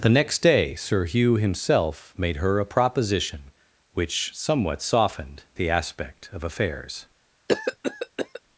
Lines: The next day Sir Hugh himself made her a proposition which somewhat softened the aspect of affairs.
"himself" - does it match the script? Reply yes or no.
yes